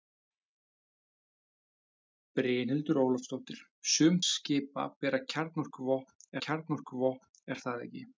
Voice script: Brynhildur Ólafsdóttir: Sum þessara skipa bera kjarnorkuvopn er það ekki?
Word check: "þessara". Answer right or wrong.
wrong